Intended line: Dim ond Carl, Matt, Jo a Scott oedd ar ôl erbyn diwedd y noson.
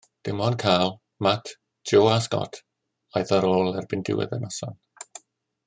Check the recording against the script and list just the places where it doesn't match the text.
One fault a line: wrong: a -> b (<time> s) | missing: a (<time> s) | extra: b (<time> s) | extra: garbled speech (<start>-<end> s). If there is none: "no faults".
no faults